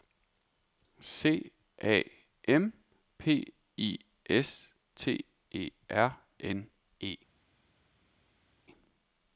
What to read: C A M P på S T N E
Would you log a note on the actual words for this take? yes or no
yes